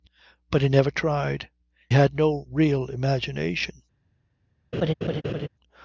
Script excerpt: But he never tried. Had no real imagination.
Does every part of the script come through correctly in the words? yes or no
yes